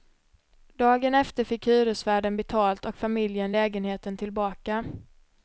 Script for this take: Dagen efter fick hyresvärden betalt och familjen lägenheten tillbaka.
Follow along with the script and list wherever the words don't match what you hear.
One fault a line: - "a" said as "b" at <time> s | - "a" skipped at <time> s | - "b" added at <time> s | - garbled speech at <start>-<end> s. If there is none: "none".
none